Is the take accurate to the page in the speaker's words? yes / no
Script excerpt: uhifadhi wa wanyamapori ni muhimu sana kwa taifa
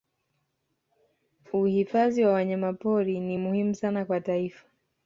yes